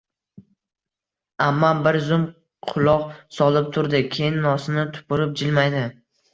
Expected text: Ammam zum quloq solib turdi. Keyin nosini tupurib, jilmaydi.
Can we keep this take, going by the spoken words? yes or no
no